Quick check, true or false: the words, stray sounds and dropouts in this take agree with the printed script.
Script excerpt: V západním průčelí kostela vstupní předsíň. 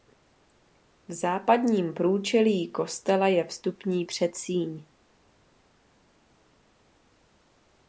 false